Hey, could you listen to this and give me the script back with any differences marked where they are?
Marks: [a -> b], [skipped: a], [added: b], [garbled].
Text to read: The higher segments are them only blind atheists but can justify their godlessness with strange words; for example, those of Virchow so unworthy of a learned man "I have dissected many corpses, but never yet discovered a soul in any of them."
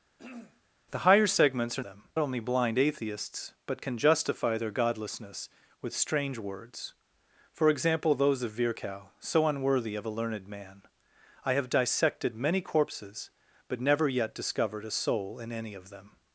The higher segments are them only blind atheists but can justify their godlessness with strange words; for example, those of Virchow so unworthy of a learned man "I have dissected many corpses, but never yet discovered a soul in any of them."